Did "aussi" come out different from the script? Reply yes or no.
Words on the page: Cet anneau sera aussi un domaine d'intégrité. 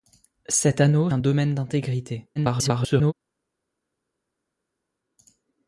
yes